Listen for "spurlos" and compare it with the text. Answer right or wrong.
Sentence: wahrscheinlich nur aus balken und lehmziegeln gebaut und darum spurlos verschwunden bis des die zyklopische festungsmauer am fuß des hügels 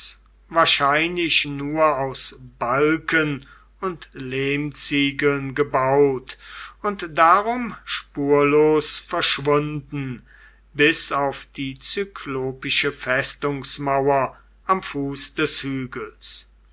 right